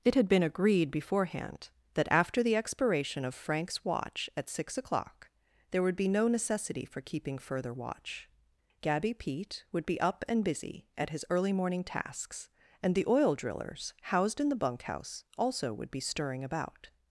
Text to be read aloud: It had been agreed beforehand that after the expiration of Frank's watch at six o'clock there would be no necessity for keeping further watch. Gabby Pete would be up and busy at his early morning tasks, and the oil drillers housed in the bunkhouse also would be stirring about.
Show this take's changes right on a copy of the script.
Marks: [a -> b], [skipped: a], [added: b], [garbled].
It had been agreed beforehand that after the expiration of Frank's watch at six o'clock there would be no necessity for keeping further watch. Gabby Pete would be up and busy at his early morning tasks, and the oil drillers housed in the bunkhouse also would be stirring about.